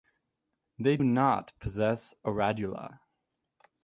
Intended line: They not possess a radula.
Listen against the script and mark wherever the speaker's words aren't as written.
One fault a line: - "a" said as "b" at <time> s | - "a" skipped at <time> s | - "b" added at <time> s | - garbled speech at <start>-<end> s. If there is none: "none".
none